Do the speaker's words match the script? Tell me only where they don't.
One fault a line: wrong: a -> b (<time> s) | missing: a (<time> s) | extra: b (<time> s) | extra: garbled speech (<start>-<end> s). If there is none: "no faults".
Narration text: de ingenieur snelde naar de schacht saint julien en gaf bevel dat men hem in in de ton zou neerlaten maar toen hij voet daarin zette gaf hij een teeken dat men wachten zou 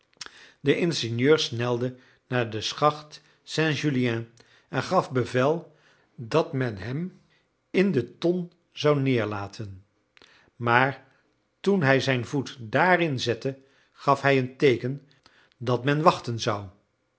missing: in (7.9 s)
extra: zijn (12.0 s)